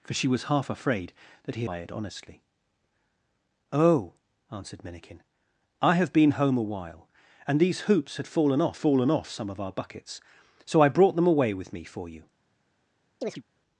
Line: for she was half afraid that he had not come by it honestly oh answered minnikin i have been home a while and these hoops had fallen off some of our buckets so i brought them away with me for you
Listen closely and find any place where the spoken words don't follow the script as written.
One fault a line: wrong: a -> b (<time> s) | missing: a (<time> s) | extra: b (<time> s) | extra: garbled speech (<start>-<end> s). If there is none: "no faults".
missing: had not come (1.6 s)
extra: fallen off (8.7 s)